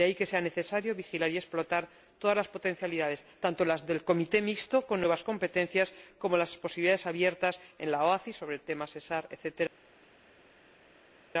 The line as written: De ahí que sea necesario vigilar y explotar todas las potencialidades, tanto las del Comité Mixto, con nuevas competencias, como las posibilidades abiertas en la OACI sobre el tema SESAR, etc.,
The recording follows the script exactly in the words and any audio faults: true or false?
true